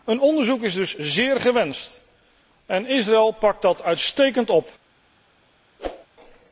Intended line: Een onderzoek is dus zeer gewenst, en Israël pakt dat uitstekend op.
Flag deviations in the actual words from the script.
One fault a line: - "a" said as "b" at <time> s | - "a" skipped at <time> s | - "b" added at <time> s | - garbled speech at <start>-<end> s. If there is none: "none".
none